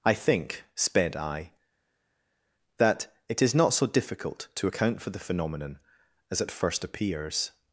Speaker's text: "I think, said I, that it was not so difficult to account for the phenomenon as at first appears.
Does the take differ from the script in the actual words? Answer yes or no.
yes